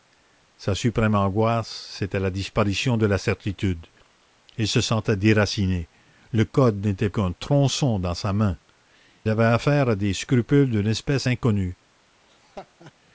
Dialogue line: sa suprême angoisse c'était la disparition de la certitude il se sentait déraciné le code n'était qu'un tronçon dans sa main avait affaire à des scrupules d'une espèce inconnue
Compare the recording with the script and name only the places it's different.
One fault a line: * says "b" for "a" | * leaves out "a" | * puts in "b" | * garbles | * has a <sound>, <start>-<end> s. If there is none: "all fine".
* has a laugh, 12.2-12.9 s